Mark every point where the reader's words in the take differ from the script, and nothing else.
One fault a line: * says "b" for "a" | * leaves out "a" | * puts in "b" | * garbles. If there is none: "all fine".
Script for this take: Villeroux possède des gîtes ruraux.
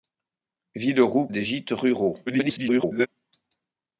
* leaves out "possède"
* garbles